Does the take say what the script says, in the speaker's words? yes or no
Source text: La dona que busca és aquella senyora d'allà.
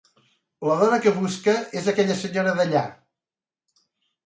yes